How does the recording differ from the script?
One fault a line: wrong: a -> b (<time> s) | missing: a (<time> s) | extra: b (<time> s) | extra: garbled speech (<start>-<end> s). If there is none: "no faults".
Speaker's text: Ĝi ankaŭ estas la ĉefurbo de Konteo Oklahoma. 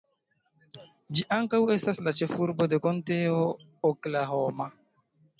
no faults